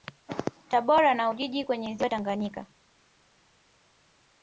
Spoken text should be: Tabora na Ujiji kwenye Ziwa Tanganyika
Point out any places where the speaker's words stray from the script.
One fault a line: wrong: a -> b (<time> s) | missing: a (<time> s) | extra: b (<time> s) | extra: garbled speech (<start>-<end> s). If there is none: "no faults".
no faults